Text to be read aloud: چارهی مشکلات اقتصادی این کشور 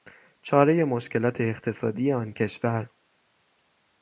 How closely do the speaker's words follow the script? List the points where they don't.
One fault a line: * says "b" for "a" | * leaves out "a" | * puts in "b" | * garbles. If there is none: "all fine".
* says "آن" for "این"